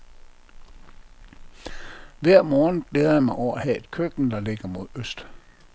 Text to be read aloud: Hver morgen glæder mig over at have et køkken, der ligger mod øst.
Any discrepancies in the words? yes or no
yes